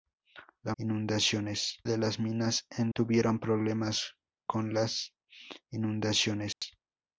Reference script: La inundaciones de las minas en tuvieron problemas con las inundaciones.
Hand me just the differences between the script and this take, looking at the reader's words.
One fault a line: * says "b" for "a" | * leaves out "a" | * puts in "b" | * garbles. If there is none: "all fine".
all fine